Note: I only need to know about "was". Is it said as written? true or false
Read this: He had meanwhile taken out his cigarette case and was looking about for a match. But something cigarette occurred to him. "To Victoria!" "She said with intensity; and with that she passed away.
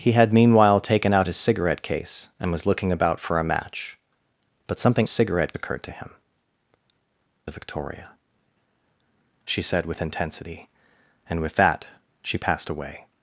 true